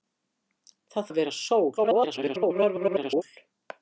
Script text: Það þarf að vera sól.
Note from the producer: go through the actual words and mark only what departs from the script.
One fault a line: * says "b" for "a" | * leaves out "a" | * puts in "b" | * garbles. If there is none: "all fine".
* leaves out "þarf"
* garbles